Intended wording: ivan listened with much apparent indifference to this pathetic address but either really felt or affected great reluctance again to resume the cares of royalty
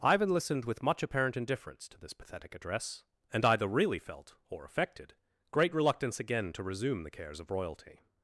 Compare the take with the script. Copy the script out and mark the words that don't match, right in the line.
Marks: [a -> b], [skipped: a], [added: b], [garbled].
ivan listened with much apparent indifference to this pathetic address [but -> and] either really felt or affected great reluctance again to resume the cares of royalty